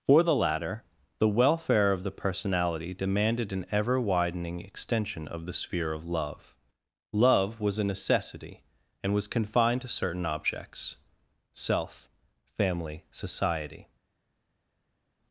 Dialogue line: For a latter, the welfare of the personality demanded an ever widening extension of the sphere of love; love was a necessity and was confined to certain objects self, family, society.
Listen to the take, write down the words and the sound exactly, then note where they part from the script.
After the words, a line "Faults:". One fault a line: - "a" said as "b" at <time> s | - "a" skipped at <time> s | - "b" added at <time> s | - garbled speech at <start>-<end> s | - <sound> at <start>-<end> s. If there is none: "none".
For the latter, the welfare of the personality demanded an ever widening extension of the sphere of love; love was a necessity and was confined to certain objects self, family, society.
Faults:
- "a" said as "the" at 0.2 s